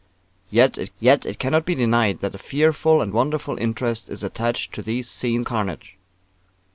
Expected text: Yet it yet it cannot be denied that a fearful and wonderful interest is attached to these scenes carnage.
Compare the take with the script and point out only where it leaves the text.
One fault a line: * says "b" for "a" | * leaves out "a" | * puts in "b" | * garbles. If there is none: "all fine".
all fine